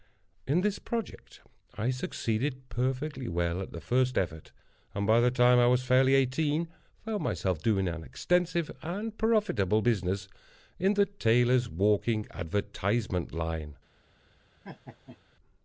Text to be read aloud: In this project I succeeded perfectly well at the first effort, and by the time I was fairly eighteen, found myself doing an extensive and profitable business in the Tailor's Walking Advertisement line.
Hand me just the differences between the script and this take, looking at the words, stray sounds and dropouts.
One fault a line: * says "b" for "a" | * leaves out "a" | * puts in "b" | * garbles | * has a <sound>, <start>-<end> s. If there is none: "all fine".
* has a laugh, 14.6-15.2 s